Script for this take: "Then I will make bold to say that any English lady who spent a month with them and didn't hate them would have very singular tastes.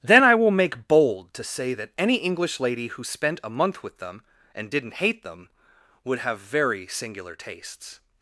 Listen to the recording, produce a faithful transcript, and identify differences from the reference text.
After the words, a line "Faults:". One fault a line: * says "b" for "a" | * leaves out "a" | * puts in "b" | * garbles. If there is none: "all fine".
"Then I will make bold to say that any English lady who spent a month with them and didn't hate them would have very singular tastes.
Faults:
all fine